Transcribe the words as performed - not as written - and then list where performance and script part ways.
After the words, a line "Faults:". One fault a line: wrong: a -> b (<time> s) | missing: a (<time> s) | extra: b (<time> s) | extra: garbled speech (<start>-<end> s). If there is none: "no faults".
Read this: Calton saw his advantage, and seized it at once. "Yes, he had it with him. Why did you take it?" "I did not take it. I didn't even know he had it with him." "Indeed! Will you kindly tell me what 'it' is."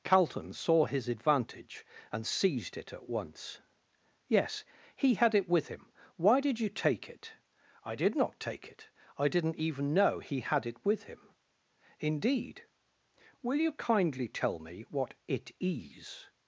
Calton saw his advantage, and seized it at once. "Yes, he had it with him. Why did you take it?" "I did not take it. I didn't even know he had it with him." "Indeed! Will you kindly tell me what 'it' is."
Faults:
no faults